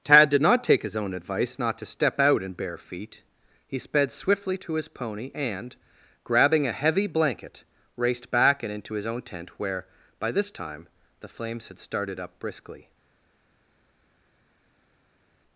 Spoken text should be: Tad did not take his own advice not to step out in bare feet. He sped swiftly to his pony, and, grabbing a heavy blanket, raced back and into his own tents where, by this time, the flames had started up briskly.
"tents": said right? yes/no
no